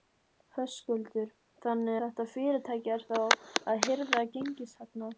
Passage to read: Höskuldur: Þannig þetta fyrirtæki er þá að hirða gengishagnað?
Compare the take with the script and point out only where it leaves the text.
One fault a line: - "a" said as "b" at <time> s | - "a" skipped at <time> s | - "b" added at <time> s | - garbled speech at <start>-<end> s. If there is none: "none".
none